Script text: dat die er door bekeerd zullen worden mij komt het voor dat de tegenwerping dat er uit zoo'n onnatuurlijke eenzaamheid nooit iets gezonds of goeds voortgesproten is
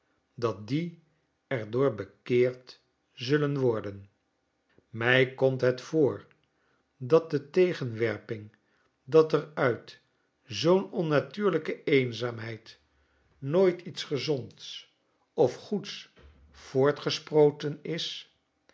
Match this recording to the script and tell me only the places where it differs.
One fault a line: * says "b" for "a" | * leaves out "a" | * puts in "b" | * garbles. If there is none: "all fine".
all fine